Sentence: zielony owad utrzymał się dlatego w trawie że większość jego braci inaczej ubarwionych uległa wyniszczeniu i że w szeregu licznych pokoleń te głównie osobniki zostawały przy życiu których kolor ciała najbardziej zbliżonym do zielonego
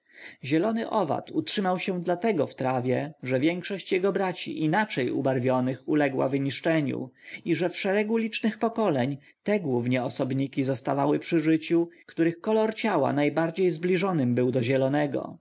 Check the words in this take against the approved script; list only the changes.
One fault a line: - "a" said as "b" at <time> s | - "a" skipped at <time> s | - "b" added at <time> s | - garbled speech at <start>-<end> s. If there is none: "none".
- "był" added at 14.4 s